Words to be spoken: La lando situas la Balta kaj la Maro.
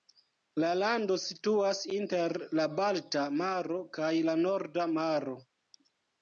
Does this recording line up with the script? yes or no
no